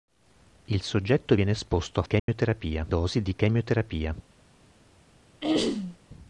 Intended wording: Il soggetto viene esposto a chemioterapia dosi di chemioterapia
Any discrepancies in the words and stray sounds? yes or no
yes